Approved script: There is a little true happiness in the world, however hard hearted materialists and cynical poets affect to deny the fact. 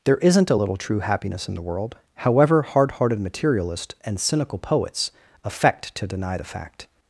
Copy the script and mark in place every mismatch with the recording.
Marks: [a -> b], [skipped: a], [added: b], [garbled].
There [is -> isn't] a little true happiness in the world, however hard hearted materialists and cynical poets affect to deny the fact.